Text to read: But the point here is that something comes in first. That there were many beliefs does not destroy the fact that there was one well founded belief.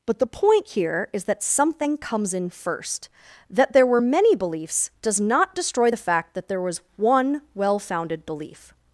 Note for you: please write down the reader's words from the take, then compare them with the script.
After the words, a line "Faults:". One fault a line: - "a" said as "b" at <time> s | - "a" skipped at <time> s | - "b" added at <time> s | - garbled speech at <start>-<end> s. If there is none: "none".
But the point here is that something comes in first. That there were many beliefs does not destroy the fact that there was one well founded belief.
Faults:
none